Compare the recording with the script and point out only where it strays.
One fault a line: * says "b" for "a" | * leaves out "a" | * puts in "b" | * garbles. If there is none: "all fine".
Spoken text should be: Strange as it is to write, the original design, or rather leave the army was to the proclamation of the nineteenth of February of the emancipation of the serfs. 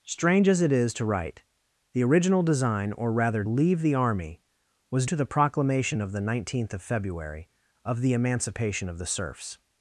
all fine